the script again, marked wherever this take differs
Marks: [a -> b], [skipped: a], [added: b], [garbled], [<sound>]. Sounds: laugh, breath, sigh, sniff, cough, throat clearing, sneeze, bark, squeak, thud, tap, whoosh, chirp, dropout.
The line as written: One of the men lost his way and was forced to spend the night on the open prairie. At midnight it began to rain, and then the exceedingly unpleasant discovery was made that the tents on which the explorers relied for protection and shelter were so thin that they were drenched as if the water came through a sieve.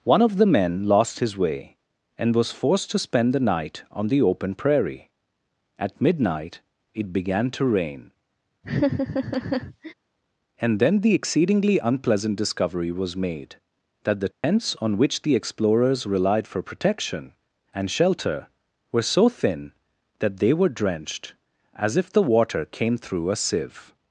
One of the men lost his way and was forced to spend the night on the open prairie. At midnight it began to rain, [laugh] and then the exceedingly unpleasant discovery was made that the tents [dropout] on which the explorers relied for protection and shelter were so thin that they were drenched as if the water came through a sieve.